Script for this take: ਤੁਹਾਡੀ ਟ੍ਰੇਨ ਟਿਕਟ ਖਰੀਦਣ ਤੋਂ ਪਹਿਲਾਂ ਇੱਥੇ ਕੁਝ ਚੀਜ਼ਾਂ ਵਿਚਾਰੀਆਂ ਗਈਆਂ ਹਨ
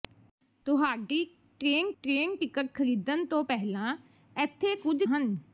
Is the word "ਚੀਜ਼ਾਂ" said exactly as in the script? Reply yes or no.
no